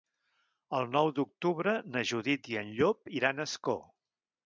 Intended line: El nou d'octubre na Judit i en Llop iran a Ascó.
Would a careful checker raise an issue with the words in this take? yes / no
no